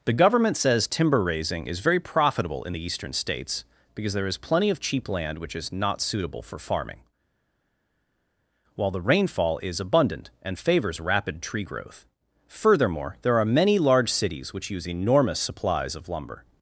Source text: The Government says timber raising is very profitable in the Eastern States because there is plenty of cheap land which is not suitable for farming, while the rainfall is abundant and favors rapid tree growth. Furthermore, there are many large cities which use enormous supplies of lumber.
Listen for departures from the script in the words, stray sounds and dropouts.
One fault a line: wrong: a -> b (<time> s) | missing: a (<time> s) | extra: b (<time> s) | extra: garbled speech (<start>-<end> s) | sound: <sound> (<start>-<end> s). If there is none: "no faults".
no faults